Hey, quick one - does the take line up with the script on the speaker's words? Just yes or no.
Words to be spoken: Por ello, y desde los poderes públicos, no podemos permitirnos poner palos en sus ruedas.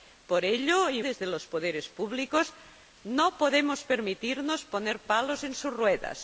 yes